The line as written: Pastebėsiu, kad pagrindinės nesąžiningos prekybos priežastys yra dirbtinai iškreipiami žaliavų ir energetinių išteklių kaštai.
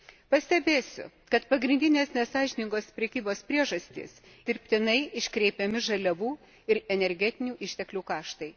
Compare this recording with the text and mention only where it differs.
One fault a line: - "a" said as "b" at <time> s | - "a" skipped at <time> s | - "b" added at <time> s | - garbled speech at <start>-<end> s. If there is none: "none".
- "yra" skipped at 4.1 s